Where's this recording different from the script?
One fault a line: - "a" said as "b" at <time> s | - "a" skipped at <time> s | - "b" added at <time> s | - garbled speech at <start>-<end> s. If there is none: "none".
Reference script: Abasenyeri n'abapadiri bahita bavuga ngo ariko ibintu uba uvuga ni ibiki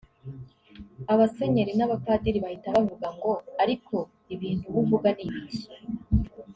none